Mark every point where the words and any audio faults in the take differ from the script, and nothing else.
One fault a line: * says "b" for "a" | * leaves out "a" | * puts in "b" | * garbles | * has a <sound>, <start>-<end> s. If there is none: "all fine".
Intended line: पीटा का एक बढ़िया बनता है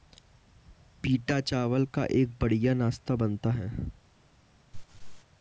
* puts in "चावल"
* puts in "नाश्ता"
* has a laugh, 4.7-5.2 s